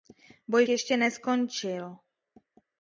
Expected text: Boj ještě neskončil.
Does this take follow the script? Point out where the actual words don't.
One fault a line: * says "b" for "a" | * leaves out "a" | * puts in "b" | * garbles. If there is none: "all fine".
all fine